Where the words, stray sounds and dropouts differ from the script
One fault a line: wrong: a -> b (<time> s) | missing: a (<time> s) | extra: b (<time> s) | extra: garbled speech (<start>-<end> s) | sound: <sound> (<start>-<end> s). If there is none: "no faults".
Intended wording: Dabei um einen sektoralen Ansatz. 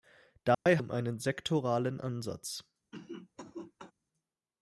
sound: dropout (0.5-0.7 s)
sound: cough (2.9-3.9 s)